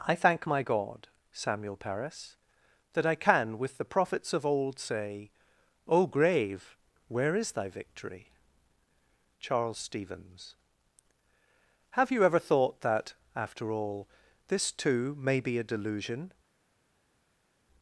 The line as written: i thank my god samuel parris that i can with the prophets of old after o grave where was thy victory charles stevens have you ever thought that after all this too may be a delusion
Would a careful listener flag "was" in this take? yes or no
yes